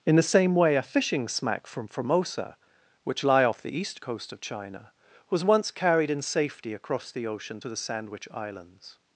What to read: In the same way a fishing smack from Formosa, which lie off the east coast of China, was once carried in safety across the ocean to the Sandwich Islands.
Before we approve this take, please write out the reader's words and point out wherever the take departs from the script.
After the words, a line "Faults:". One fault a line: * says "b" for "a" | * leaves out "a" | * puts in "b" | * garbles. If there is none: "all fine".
In the same way a fishing smack from Formosa, which lie off the east coast of China, was once carried in safety across the ocean to the Sandwich Islands.
Faults:
all fine